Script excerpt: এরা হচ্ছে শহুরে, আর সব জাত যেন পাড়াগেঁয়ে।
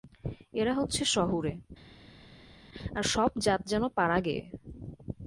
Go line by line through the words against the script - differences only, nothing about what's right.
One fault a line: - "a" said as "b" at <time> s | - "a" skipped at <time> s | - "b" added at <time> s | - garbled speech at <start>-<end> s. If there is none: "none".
none